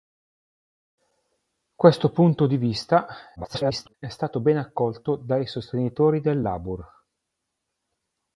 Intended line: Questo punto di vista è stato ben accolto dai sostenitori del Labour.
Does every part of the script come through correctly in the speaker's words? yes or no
no